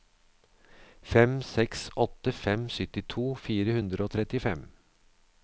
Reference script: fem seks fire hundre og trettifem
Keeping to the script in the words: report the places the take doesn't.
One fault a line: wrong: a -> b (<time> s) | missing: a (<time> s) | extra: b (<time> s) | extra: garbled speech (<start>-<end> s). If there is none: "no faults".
extra: åtte fem syttito (2.0 s)